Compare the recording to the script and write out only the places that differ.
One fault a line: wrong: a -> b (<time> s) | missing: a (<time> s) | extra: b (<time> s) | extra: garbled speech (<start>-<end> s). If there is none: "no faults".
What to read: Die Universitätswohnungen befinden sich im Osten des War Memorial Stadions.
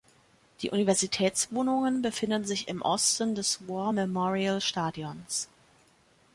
no faults